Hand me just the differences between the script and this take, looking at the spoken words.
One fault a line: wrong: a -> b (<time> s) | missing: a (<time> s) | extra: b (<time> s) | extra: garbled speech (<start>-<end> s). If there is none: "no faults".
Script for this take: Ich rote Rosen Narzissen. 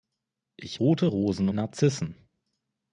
no faults